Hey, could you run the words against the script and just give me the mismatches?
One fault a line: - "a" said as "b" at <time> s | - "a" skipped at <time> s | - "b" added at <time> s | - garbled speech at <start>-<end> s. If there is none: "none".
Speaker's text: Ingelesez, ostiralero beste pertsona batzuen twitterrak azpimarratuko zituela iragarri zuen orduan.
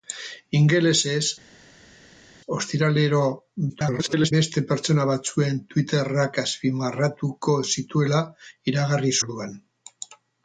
- garbled speech at 3.7-4.3 s
- "zuen" skipped at 9.1 s